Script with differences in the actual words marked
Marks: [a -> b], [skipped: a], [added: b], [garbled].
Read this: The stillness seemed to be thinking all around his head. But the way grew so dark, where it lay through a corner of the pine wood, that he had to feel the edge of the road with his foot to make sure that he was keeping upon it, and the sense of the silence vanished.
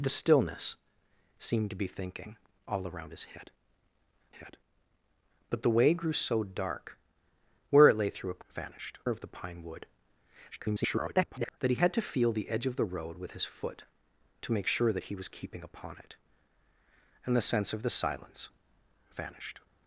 The stillness seemed to be thinking all around his head. [added: head] But the way grew so dark, where it lay through a [corner -> vanished] of the pine wood, [garbled] that he had to feel the edge of the road with his foot to make sure that he was keeping upon it, and the sense of the silence vanished.